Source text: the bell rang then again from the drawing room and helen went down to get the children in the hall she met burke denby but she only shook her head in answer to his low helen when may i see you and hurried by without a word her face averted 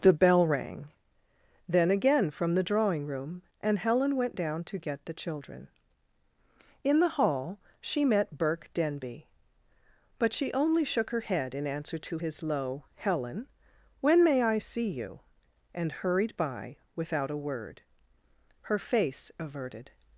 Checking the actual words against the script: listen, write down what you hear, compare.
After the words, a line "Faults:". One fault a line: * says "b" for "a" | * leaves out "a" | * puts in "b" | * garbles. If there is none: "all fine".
the bell rang then again from the drawing room and helen went down to get the children in the hall she met burke denby but she only shook her head in answer to his low helen when may i see you and hurried by without a word her face averted
Faults:
all fine